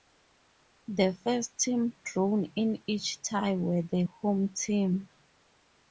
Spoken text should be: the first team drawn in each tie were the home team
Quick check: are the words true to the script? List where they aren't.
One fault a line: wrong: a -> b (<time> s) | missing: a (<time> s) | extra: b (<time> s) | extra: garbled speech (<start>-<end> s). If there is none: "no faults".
no faults